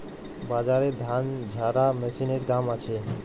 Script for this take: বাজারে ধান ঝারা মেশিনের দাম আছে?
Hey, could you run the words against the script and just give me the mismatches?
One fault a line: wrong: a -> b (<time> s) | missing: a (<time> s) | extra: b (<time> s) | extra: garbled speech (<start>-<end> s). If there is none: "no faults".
no faults